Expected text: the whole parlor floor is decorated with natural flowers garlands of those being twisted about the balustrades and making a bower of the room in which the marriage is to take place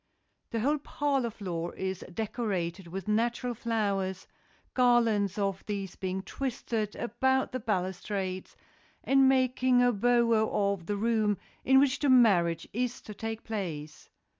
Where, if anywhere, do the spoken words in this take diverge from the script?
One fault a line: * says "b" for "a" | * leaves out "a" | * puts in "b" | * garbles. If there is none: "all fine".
* says "these" for "those"